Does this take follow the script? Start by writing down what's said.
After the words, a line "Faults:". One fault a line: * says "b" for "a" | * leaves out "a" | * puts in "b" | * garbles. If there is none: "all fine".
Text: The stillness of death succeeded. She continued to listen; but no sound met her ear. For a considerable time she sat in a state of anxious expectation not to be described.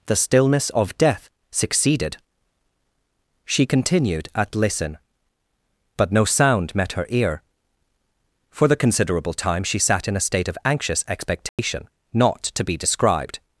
The stillness of death succeeded. She continued at listen; but no sound met her ear. For the considerable time she sat in a state of anxious expectation not to be described.
Faults:
* says "at" for "to"
* says "the" for "a"